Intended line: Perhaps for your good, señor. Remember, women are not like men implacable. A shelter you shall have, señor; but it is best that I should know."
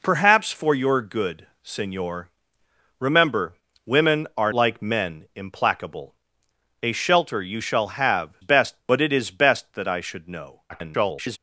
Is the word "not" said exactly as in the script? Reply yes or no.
no